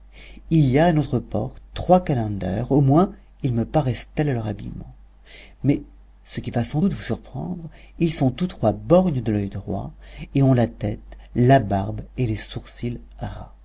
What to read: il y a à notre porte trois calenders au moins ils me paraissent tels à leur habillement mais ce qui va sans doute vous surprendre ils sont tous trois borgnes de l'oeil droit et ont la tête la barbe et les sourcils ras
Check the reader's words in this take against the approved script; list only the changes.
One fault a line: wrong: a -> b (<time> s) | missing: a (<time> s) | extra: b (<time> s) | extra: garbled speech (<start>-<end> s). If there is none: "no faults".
no faults